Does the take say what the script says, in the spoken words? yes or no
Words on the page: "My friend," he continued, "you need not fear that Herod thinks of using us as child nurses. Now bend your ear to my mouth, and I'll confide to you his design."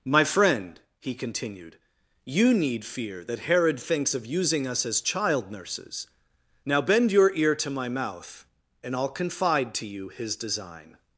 no